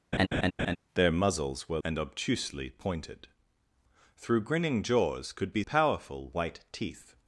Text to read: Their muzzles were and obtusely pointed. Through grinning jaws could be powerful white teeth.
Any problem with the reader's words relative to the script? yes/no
no